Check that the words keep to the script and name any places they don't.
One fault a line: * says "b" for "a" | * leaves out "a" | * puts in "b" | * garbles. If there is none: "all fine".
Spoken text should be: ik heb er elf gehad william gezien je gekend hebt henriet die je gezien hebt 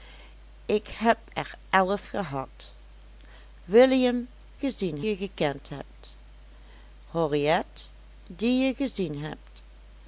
all fine